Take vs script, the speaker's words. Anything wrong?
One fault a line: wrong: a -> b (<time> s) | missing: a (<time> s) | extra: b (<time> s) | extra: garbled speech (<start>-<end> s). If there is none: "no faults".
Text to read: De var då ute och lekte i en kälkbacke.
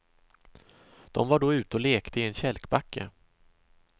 no faults